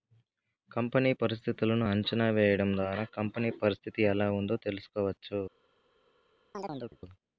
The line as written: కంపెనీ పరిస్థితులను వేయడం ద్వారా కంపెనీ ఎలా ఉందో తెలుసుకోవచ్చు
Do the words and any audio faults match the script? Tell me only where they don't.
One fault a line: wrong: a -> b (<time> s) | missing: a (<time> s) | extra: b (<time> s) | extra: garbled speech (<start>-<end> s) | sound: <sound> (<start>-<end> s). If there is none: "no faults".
extra: అంచనా (1.9 s)
extra: పరిస్థితి (3.6 s)
sound: chirp (6.5-7.0 s)